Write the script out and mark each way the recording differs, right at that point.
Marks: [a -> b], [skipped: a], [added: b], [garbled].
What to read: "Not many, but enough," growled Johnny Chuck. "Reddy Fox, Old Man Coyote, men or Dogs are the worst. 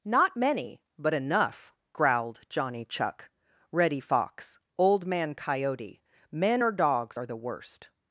"Not many, but enough," growled Johnny Chuck. "Reddy Fox, Old Man Coyote, men or Dogs are the worst.